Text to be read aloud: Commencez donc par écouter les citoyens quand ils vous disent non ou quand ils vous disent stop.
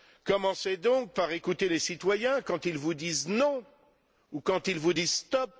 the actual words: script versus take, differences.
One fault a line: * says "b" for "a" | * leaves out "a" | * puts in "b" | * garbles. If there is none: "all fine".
all fine